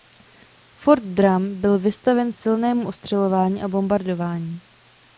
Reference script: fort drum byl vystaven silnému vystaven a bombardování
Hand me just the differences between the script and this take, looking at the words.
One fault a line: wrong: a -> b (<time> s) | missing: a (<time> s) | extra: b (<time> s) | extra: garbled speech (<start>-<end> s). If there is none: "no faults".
wrong: vystaven -> ostřelování (2.9 s)